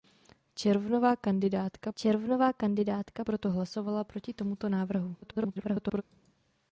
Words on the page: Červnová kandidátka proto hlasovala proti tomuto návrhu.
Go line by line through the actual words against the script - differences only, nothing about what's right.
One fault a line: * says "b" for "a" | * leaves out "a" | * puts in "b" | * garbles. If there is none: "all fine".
* puts in "červnová kandidátka"
* garbles